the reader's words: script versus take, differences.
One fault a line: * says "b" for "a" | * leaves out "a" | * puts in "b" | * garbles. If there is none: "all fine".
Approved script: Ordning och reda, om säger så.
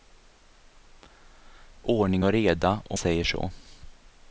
all fine